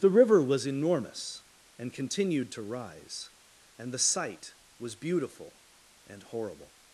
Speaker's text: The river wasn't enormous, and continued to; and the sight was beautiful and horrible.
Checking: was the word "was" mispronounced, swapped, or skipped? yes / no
no